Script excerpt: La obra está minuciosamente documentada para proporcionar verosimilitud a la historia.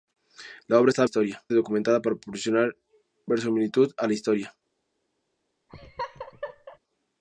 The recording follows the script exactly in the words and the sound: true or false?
false